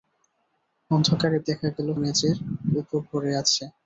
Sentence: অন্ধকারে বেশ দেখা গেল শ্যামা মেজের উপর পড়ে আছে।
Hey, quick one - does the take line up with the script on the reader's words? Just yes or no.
no